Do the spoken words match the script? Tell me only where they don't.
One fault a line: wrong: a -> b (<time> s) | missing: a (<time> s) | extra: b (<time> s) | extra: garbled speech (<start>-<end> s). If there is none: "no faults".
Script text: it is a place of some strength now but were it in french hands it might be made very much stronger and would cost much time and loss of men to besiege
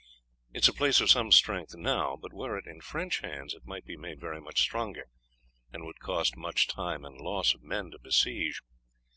no faults